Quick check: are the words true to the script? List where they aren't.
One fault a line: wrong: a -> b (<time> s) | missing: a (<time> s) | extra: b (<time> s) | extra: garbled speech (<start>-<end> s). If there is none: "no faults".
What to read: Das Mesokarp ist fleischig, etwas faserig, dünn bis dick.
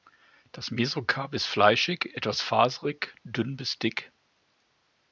no faults